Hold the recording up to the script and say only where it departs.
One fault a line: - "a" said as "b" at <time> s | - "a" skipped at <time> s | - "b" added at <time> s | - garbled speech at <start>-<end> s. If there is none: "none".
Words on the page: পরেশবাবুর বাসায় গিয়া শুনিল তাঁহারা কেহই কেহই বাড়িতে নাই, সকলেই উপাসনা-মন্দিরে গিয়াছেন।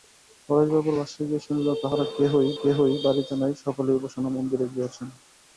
none